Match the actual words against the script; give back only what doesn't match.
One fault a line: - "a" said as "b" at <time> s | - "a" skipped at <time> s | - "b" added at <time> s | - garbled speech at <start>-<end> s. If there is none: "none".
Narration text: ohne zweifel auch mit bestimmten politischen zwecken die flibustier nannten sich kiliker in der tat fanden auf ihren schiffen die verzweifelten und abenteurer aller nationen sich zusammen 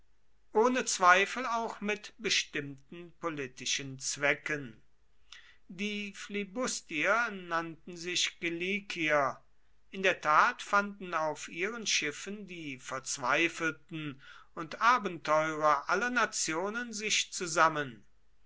none